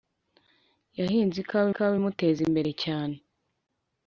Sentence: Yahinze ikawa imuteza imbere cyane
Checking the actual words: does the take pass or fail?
fail